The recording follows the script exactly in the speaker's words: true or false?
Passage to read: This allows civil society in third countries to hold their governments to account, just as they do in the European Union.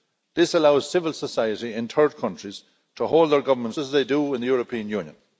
false